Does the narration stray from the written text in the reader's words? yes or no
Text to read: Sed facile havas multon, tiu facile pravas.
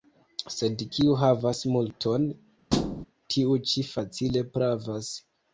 yes